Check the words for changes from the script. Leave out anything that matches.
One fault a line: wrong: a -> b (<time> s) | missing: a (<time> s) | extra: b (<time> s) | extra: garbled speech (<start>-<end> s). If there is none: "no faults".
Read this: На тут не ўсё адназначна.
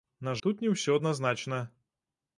no faults